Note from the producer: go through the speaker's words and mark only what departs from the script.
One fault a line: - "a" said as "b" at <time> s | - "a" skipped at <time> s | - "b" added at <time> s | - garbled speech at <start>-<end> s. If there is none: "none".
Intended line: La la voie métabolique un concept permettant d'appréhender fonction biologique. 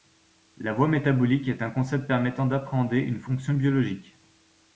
- "la" skipped at 0.7 s
- "est" added at 1.5 s
- "une" added at 3.0 s